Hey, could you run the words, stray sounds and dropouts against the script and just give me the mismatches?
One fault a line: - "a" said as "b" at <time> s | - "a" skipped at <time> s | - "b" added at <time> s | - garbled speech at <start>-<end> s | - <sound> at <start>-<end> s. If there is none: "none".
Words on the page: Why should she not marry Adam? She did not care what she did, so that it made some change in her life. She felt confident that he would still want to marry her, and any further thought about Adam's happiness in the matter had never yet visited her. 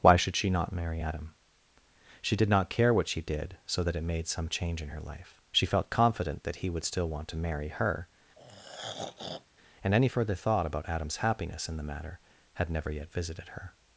- throat clearing at 8.4-9.5 s